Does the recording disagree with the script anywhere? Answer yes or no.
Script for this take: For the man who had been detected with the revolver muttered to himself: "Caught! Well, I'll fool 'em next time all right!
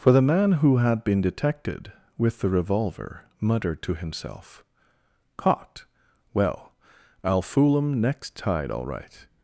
yes